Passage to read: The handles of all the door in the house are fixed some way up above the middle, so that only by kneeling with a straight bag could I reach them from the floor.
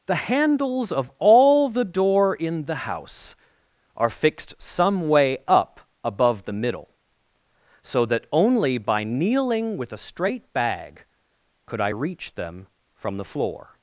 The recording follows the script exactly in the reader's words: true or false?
true